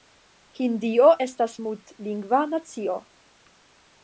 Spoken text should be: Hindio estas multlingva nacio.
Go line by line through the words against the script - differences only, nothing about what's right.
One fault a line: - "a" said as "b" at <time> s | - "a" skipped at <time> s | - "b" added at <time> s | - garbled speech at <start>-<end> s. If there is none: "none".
none